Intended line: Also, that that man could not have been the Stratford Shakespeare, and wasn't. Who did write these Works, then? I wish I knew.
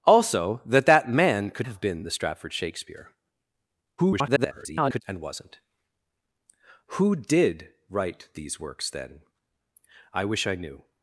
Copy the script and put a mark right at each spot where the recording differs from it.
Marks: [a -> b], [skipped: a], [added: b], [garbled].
Also, that that man could [skipped: not] have been the Stratford Shakespeare, [garbled] and wasn't. Who did write these Works, then? I wish I knew.